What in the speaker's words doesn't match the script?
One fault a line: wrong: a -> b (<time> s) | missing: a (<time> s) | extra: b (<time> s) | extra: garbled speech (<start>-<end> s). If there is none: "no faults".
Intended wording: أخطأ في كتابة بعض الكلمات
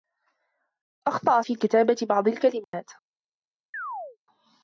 no faults